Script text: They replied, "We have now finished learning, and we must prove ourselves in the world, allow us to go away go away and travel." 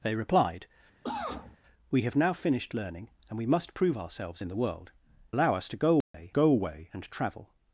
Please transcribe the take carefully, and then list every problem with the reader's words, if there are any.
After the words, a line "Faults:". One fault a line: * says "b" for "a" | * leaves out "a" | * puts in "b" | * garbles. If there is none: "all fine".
They replied, "We have now finished learning, and we must prove ourselves in the world, allow us to go away go away and travel."
Faults:
all fine